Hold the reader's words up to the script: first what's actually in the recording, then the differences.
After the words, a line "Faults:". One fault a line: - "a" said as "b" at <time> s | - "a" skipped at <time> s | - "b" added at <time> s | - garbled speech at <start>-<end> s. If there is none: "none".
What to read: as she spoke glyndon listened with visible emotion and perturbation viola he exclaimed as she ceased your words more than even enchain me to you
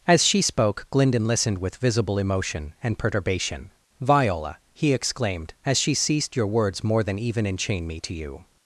as she spoke glyndon listened with visible emotion and perturbation viola he exclaimed as she ceased your words more than even enchain me to you
Faults:
none